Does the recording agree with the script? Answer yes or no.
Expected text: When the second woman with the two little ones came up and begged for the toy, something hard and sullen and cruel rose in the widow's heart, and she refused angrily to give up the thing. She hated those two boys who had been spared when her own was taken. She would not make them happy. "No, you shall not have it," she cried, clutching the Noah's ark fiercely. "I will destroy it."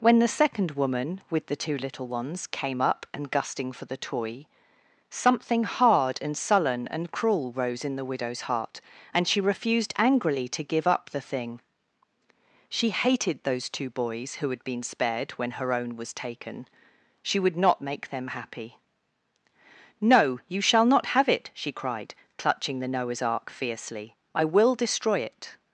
no